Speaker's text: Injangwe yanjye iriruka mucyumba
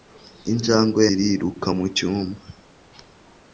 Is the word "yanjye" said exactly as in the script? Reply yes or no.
no